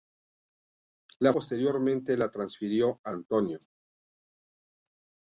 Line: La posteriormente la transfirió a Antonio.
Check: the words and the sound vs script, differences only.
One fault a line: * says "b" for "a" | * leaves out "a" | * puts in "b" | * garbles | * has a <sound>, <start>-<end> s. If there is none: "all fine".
all fine